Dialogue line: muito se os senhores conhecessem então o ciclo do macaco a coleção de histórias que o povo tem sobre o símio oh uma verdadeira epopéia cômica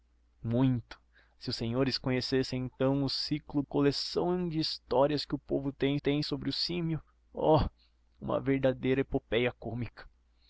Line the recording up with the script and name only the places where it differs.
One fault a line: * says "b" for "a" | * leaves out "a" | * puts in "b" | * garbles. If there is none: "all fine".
* leaves out "do macaco a"
* puts in "tem"